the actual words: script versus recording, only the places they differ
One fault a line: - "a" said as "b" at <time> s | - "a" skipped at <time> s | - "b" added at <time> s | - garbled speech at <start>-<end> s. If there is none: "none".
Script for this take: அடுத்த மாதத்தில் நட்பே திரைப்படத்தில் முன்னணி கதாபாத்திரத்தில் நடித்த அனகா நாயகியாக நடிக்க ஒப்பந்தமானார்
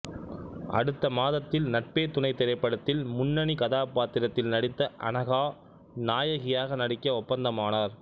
- "துணை" added at 2.1 s